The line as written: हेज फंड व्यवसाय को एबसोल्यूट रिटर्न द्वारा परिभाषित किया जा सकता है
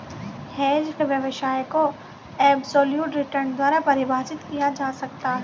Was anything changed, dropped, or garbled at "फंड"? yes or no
yes